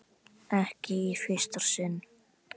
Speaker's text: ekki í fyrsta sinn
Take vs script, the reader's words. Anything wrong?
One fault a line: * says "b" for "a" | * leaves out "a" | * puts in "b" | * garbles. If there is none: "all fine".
all fine